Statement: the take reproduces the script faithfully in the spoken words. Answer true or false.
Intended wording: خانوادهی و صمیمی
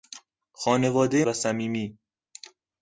true